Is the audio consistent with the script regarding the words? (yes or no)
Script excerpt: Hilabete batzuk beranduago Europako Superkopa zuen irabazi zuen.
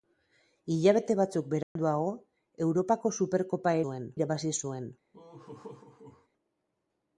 yes